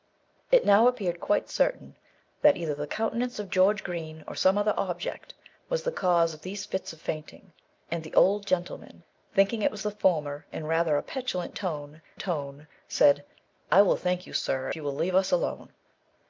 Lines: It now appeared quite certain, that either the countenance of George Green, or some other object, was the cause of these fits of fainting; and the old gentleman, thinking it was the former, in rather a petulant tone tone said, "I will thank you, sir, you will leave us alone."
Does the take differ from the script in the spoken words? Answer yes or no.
no